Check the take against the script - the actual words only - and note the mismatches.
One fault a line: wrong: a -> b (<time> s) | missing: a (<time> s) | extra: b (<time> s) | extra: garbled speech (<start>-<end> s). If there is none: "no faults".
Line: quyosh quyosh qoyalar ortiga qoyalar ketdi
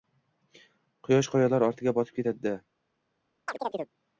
missing: quyosh (1.3 s)
wrong: qoyalar -> botib (2.0 s)